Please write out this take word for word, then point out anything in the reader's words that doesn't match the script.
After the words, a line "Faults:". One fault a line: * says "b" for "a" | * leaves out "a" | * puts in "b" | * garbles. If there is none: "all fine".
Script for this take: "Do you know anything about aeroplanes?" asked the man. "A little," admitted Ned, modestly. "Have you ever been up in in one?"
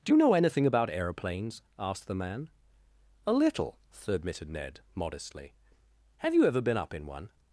"Do you know anything about aeroplanes?" asked the man. "A little," admitted Ned, modestly. "Have you ever been up in one?"
Faults:
* leaves out "in"